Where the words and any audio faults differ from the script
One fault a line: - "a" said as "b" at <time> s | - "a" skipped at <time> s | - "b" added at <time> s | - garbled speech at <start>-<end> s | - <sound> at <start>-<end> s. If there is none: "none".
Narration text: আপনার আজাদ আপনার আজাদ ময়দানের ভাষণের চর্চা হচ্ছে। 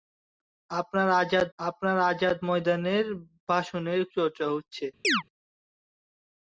- chirp at 5.0-5.2 s